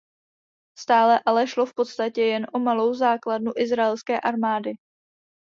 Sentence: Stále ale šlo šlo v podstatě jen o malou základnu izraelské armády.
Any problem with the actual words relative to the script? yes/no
yes